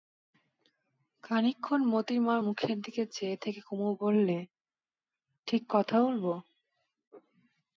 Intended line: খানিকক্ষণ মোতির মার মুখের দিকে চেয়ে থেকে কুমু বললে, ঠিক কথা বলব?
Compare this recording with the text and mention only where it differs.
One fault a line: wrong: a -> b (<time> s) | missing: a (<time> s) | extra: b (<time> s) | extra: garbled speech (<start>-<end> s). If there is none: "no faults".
no faults